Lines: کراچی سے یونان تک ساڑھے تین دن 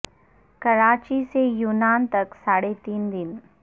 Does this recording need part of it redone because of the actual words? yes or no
no